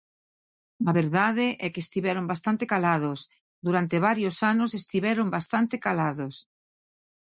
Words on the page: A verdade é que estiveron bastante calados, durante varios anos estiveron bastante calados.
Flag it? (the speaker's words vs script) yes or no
no